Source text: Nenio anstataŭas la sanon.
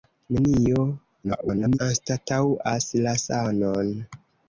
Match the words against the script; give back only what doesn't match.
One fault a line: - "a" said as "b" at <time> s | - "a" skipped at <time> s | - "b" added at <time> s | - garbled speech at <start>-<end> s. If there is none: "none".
- garbled speech at 1.2-1.8 s